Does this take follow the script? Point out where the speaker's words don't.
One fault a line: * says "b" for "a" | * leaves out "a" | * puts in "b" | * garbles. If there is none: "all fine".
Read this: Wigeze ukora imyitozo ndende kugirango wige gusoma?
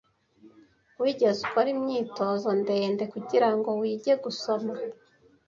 all fine